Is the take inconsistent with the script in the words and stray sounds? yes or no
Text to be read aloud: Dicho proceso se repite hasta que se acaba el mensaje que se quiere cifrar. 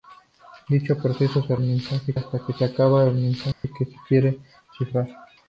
yes